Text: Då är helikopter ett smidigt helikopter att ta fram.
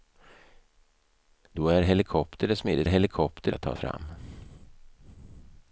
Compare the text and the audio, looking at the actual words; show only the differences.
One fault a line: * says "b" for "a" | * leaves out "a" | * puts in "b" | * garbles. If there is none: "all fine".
all fine